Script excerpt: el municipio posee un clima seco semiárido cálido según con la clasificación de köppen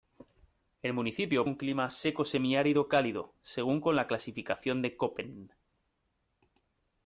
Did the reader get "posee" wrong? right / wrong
wrong